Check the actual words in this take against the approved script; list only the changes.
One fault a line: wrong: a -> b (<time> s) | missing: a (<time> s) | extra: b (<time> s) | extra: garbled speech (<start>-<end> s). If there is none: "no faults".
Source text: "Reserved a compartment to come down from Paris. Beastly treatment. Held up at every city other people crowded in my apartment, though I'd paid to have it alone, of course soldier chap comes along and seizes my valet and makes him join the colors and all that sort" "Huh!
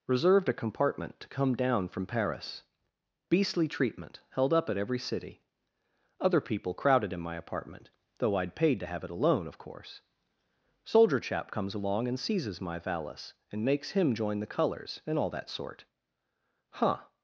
wrong: valet -> valise (12.8 s)